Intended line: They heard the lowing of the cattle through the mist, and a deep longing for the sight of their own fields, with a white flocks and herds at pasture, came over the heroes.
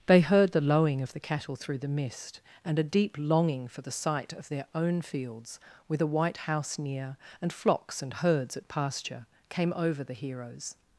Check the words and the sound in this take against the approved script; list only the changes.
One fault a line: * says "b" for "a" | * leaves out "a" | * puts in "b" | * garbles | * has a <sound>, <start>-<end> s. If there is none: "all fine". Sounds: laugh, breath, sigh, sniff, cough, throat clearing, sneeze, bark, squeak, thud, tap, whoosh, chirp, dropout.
* puts in "house near and"